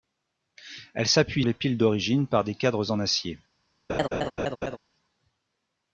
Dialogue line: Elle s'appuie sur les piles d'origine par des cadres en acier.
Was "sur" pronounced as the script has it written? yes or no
no